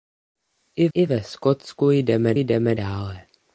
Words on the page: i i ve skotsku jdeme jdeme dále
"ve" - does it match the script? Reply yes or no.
yes